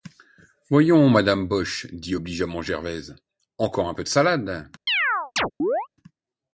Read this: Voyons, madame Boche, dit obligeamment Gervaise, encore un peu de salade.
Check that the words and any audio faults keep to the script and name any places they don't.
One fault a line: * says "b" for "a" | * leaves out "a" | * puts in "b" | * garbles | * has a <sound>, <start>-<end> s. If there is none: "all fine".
* has a chirp, 4.9-5.9 s